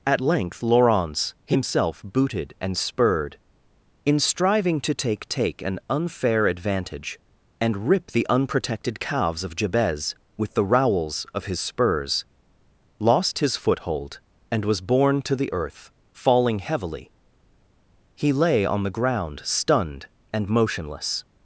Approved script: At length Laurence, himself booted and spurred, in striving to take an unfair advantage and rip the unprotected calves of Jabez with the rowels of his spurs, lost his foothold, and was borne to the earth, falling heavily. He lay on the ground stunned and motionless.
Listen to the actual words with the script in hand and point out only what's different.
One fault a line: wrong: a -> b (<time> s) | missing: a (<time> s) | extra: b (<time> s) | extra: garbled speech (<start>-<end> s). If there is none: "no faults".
extra: take (5.3 s)